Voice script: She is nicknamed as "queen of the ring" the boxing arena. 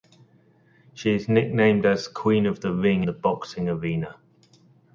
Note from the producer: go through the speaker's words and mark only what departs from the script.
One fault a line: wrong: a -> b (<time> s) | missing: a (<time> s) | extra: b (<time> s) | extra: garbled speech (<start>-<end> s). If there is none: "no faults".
no faults